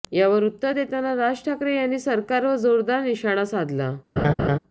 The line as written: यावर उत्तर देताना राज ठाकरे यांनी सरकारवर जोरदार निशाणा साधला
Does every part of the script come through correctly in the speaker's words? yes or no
yes